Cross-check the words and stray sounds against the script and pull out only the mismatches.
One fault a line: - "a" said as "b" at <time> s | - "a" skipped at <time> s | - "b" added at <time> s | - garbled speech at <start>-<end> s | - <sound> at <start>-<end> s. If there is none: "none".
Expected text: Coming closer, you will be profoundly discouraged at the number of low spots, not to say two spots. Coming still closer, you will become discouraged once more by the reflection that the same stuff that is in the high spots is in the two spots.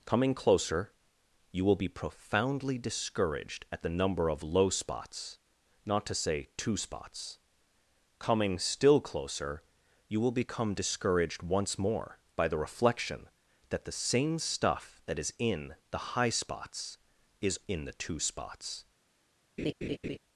- laugh at 19.6-20.2 s